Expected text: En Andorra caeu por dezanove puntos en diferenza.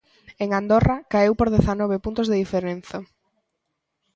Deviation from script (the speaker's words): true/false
true